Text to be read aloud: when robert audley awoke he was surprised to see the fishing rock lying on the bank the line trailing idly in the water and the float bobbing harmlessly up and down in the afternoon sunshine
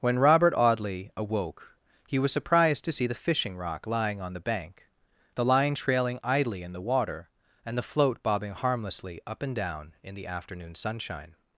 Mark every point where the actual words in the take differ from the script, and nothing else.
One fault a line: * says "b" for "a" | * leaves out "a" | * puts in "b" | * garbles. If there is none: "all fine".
all fine